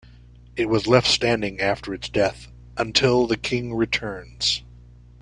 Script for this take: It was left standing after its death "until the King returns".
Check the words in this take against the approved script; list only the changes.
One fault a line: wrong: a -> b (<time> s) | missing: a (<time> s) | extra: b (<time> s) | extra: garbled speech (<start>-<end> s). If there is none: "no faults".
no faults